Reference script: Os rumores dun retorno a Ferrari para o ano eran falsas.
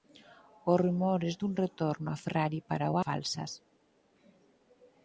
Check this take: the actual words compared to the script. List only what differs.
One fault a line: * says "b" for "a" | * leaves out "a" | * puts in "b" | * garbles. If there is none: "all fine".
* leaves out "ano eran"